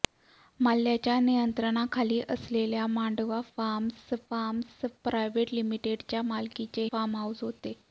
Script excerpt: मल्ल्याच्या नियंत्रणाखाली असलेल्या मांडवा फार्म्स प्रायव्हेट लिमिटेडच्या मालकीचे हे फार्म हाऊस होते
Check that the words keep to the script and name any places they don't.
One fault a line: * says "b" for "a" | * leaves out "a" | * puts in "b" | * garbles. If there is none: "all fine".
* puts in "फार्म्स"
* leaves out "हे"